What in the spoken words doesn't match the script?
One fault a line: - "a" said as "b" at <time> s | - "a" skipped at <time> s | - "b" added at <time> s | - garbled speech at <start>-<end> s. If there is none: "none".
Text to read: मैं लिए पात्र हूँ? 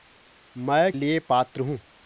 none